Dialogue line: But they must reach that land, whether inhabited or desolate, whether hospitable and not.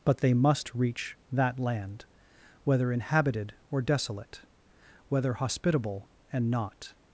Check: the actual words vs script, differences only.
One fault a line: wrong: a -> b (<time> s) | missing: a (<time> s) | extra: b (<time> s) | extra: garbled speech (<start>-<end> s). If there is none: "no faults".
no faults